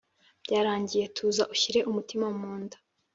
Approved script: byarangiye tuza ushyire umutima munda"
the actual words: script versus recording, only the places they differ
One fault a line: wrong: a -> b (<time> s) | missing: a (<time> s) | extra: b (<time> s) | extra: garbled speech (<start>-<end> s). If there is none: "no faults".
no faults